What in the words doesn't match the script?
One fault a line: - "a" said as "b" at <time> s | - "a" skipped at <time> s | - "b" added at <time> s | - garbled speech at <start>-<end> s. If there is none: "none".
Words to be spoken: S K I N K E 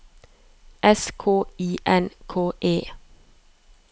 none